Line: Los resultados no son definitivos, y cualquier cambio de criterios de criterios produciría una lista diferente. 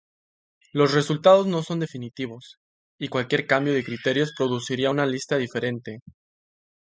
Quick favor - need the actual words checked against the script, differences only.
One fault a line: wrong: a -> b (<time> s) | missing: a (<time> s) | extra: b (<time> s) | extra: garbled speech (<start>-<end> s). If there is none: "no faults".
missing: de criterios (4.3 s)